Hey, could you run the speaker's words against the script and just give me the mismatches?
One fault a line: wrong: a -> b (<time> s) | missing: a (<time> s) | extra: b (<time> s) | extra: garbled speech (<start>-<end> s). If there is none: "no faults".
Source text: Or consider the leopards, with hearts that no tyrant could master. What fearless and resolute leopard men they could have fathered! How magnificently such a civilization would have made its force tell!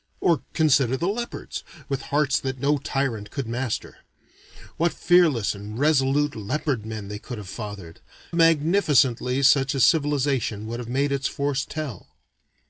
missing: How (8.0 s)